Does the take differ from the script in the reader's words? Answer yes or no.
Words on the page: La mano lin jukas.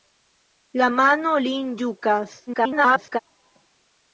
yes